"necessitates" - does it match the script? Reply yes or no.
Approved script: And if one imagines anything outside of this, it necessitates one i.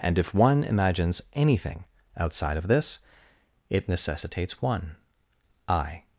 yes